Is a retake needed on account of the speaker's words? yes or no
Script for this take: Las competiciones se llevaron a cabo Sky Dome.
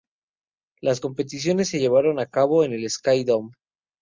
yes